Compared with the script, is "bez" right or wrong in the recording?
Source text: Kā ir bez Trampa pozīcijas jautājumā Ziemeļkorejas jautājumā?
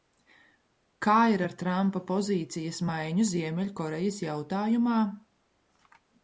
wrong